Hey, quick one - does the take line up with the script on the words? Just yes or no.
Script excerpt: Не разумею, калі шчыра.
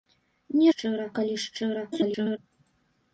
no